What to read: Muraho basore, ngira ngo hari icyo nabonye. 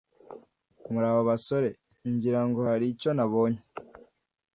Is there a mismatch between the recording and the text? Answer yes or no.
no